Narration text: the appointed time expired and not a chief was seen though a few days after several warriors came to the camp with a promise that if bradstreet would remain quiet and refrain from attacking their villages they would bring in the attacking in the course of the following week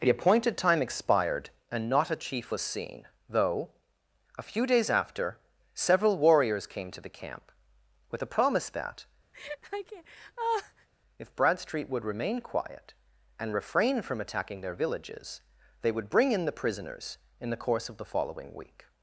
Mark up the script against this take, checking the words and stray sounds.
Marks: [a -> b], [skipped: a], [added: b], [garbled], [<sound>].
the appointed time expired and not a chief was seen though a few days after several warriors came to the camp with a promise that [laugh] if bradstreet would remain quiet and refrain from attacking their villages they would bring in the [attacking -> prisoners] in the course of the following week